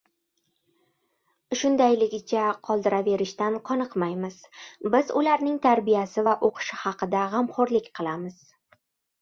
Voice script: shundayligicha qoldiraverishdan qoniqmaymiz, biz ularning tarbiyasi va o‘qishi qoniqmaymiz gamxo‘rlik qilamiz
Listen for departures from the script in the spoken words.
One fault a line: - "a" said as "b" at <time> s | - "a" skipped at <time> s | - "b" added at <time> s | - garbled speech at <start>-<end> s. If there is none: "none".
- "qoniqmaymiz" said as "haqida" at 6.8 s